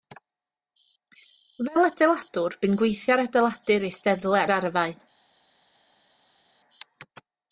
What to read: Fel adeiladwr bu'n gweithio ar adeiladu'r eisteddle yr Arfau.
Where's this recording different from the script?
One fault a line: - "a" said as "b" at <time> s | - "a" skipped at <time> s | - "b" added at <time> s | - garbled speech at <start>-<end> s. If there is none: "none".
none